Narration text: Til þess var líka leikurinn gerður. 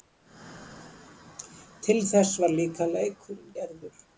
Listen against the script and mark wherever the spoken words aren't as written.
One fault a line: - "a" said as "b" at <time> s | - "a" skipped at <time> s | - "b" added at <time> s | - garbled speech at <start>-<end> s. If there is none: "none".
none